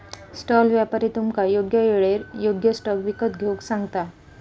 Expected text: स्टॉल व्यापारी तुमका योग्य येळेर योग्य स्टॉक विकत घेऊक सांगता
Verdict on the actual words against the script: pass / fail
pass